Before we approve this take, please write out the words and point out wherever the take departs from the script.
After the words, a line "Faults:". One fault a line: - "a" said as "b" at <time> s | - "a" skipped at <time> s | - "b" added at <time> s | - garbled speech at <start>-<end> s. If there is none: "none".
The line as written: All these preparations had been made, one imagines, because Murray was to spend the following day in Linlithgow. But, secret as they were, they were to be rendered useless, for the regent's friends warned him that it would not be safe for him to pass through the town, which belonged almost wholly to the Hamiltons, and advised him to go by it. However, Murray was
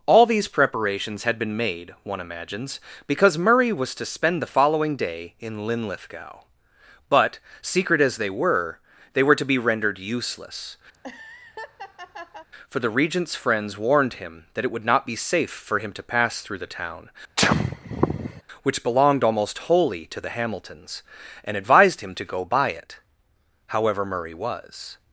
All these preparations had been made, one imagines, because Murray was to spend the following day in Linlithgow. But, secret as they were, they were to be rendered useless, for the regent's friends warned him that it would not be safe for him to pass through the town, which belonged almost wholly to the Hamiltons, and advised him to go by it. However, Murray was
Faults:
none